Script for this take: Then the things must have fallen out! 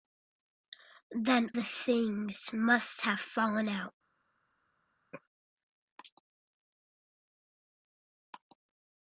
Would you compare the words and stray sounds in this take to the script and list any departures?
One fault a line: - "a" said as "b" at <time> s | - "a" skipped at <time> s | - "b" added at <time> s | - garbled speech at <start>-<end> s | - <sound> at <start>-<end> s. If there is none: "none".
none